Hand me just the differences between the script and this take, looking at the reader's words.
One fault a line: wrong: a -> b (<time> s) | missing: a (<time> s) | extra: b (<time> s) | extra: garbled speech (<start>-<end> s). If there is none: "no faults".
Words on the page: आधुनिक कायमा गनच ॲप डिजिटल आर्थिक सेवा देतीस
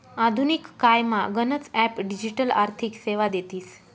no faults